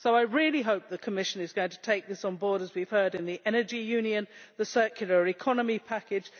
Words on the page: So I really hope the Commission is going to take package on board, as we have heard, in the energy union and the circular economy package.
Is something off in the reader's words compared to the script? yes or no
yes